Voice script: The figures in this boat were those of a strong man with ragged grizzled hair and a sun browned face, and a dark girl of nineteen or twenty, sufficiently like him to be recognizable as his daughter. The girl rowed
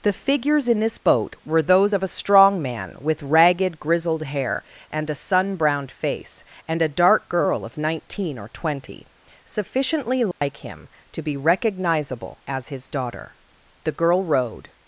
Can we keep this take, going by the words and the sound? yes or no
no